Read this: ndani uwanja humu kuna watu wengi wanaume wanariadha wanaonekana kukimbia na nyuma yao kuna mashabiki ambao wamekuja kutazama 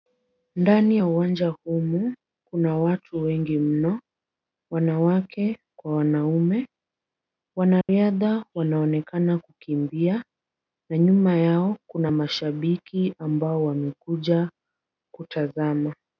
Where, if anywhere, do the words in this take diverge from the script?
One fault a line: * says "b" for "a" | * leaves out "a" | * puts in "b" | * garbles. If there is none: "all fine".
* puts in "ya"
* puts in "mno wanawake kwa"